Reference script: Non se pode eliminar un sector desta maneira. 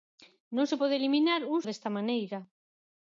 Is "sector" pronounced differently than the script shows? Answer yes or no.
yes